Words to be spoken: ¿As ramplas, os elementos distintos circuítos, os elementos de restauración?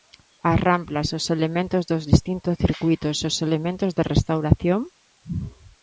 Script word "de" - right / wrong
right